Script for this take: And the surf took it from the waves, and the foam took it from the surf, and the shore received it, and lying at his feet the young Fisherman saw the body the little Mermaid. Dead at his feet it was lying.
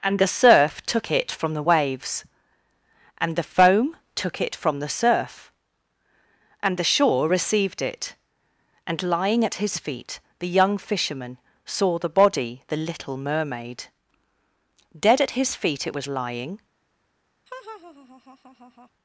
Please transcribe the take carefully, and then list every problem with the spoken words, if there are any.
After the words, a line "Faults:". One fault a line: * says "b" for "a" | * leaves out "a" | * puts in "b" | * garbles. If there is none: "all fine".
And the surf took it from the waves, and the foam took it from the surf, and the shore received it, and lying at his feet the young Fisherman saw the body the little Mermaid. Dead at his feet it was lying.
Faults:
all fine